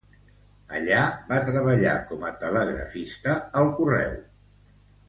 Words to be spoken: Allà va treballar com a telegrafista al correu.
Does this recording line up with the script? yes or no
yes